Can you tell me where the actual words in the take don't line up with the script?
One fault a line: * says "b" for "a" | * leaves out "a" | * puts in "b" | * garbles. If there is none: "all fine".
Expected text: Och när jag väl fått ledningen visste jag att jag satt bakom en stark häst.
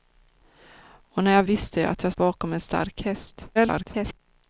* leaves out "väl fått ledningen"
* leaves out "satt"
* garbles